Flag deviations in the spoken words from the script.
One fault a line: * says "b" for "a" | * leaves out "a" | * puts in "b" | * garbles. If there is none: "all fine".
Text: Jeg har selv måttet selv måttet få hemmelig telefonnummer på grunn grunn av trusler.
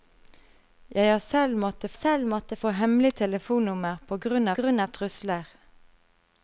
all fine